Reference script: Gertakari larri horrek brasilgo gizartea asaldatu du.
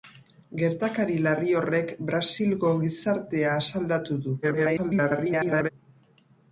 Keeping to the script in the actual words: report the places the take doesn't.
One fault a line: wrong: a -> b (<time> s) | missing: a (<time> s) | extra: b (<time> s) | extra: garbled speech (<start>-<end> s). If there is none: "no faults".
extra: garbled speech (4.4-5.7 s)